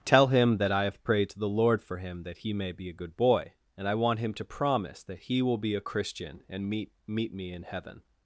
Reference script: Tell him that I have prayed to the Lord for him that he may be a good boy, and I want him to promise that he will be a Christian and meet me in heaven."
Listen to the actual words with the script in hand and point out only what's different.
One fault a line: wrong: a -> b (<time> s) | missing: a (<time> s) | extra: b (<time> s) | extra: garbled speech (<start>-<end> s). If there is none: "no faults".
extra: meet (7.0 s)